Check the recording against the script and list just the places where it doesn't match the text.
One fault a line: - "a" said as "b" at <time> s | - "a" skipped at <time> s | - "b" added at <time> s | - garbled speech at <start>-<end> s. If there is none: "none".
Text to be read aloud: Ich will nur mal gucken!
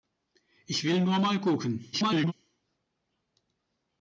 - garbled speech at 1.9-2.3 s